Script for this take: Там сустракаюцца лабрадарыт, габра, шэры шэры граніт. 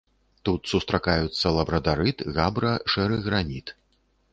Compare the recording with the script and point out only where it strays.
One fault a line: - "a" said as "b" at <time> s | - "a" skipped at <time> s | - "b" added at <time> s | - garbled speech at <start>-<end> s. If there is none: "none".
- "Там" said as "Тут" at 0.5 s
- "шэры" skipped at 3.2 s